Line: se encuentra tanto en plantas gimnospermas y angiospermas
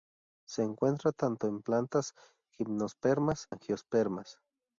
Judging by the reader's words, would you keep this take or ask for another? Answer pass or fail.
fail